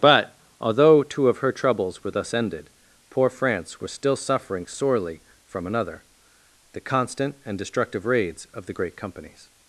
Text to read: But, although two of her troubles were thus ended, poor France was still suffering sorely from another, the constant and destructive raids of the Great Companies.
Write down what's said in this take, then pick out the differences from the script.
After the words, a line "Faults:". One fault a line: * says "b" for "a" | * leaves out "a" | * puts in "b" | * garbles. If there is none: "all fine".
But, although two of her troubles were thus ended, poor France was still suffering sorely from another, the constant and destructive raids of the Great Companies.
Faults:
all fine